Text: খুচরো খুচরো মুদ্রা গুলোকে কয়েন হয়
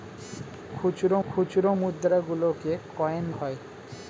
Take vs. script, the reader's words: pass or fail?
pass